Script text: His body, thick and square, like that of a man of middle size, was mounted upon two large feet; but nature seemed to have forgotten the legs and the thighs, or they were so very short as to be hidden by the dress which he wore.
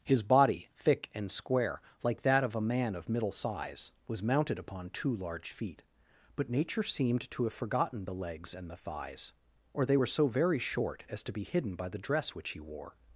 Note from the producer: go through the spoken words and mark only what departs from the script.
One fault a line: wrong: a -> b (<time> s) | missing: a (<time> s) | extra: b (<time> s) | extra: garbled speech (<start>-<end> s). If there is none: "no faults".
no faults